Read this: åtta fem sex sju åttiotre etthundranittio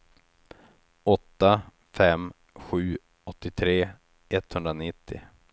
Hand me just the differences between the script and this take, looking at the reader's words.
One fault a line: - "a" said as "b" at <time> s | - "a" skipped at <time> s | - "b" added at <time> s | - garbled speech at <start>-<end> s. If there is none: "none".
- "sex" skipped at 2.3 s